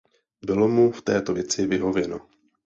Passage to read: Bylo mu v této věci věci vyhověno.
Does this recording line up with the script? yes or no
no